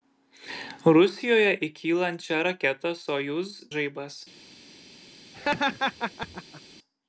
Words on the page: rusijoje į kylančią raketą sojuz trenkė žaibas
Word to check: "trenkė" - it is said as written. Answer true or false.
false